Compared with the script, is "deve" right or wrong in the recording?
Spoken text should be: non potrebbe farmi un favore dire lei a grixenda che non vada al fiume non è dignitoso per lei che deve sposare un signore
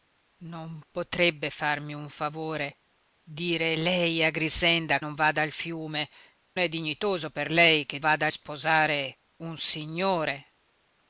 wrong